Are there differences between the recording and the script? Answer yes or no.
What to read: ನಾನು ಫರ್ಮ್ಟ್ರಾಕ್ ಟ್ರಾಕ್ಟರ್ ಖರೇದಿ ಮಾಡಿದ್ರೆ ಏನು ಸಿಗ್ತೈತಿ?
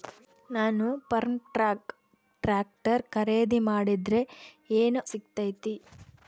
no